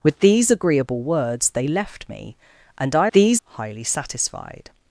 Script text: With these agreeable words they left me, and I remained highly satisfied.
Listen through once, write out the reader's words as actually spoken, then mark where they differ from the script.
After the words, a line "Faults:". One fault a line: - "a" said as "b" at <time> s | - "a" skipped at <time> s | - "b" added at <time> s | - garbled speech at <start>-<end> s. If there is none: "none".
With these agreeable words they left me, and I these highly satisfied.
Faults:
- "remained" said as "these" at 3.1 s